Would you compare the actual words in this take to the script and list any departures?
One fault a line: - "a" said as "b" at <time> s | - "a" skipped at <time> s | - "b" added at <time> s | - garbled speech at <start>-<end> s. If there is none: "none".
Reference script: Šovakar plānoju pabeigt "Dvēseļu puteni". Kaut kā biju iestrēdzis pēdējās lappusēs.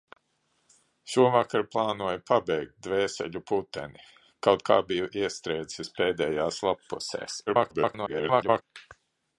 - garbled speech at 7.5-8.6 s